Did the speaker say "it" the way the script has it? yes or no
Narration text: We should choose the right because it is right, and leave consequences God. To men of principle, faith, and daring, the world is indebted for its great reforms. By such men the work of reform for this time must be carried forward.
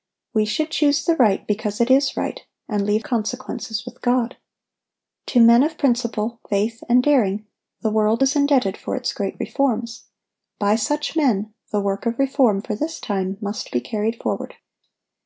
yes